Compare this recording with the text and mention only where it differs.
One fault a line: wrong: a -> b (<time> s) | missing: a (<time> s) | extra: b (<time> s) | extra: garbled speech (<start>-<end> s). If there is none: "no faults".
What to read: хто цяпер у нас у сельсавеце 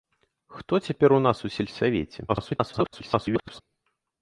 extra: garbled speech (2.3-3.6 s)